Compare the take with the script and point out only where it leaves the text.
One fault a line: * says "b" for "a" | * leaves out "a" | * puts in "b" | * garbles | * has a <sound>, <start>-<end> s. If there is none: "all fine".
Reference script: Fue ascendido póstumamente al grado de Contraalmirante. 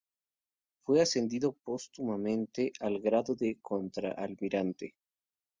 all fine